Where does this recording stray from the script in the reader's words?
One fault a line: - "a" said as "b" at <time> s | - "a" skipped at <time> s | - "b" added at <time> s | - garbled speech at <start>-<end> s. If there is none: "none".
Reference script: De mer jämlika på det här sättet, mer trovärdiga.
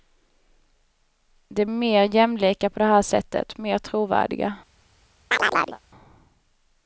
none